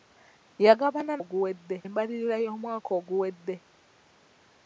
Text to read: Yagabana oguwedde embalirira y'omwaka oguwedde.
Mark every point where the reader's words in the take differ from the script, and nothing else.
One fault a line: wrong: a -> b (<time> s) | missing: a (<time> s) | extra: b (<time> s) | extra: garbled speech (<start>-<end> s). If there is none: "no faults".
no faults